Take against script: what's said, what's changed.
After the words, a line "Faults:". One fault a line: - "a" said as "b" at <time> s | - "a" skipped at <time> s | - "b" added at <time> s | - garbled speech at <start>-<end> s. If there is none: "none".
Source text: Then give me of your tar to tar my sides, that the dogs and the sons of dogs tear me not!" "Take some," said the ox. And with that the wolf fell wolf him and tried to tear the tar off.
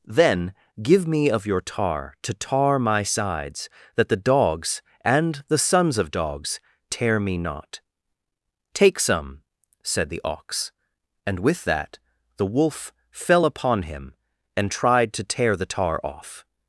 Then give me of your tar to tar my sides, that the dogs and the sons of dogs tear me not!" "Take some," said the ox. And with that the wolf fell upon him and tried to tear the tar off.
Faults:
- "wolf" said as "upon" at 13.4 s